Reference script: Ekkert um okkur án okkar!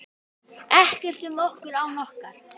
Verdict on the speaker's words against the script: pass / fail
pass